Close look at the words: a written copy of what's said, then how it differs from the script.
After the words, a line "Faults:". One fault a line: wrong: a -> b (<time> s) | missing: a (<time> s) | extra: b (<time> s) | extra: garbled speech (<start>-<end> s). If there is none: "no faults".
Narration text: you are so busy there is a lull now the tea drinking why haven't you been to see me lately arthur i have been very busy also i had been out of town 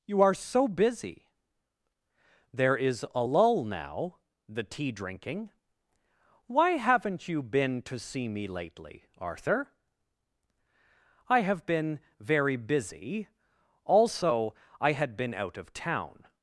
you are so busy there is a lull now the tea drinking why haven't you been to see me lately arthur i have been very busy also i had been out of town
Faults:
no faults